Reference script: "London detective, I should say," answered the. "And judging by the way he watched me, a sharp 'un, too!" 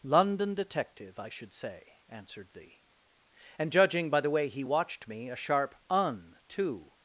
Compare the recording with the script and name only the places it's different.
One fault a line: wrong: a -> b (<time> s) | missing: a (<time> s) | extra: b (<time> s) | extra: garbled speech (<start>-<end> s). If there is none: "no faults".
no faults